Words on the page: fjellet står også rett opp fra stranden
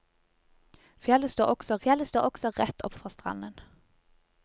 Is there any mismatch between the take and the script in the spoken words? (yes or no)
yes